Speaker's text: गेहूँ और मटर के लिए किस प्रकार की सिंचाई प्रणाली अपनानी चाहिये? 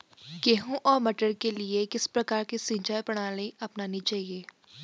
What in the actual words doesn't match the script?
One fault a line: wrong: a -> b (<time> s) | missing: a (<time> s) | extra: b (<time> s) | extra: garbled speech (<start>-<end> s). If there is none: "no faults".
no faults